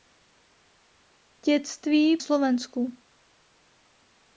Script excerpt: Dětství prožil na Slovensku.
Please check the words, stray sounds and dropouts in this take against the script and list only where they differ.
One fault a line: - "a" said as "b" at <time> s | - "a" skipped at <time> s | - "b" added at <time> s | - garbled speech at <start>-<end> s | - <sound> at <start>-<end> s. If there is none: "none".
- "prožil na" skipped at 2.2 s